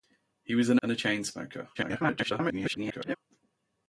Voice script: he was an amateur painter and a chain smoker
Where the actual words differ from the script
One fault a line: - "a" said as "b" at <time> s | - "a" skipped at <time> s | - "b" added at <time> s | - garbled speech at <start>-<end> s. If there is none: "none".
- "amateur painter" skipped at 0.8 s
- garbled speech at 1.7-3.2 s